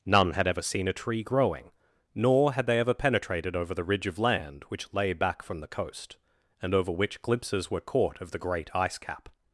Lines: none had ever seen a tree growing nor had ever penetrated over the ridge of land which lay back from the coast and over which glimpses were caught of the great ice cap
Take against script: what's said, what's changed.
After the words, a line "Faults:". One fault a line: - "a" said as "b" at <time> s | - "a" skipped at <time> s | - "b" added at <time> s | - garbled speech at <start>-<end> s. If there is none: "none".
none had ever seen a tree growing nor had they ever penetrated over the ridge of land which lay back from the coast and over which glimpses were caught of the great ice cap
Faults:
- "they" added at 2.6 s